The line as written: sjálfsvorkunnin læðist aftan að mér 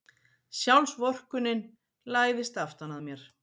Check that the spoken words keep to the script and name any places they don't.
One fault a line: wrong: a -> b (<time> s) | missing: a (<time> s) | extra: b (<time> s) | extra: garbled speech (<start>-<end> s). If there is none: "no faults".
no faults